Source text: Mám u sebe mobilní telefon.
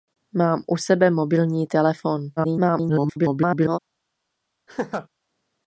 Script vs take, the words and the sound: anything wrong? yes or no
yes